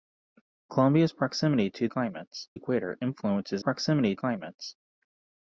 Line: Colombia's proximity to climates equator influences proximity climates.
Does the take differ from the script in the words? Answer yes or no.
no